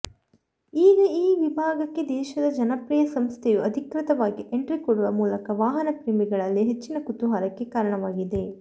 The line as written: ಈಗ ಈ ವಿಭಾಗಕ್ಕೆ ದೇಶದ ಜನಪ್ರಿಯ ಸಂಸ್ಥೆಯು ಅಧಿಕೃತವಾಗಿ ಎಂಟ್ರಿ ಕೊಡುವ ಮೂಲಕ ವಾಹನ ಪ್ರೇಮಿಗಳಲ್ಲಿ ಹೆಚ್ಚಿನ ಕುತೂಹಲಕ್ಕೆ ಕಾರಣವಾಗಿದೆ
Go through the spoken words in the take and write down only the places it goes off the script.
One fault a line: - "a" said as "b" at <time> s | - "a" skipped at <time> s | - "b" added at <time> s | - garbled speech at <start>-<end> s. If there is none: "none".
none